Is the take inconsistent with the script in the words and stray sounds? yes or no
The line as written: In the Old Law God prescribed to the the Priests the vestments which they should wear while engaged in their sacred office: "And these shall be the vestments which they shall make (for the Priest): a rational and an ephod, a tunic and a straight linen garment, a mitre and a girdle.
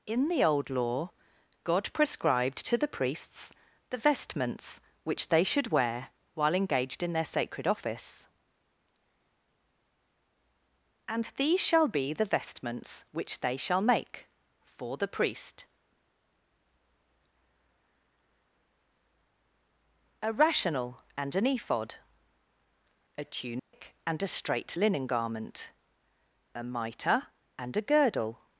yes